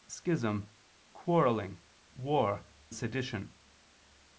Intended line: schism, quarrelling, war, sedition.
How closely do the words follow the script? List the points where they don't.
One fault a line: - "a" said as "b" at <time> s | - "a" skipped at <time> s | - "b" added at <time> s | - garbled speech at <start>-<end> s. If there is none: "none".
none